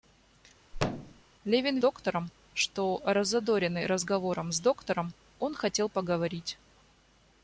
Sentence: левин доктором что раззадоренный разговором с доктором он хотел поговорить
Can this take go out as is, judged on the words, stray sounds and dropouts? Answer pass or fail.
fail